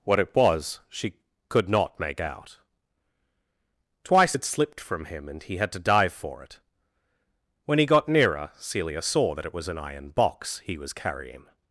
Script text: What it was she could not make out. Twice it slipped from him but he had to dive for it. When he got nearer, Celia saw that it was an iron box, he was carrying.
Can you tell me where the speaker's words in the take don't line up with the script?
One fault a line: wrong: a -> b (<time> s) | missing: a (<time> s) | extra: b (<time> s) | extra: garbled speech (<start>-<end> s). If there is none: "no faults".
wrong: but -> and (5.3 s)